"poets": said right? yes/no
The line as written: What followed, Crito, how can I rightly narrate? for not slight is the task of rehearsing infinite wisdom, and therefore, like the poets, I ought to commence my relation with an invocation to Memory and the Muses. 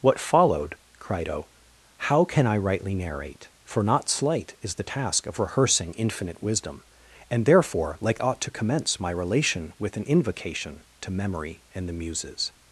no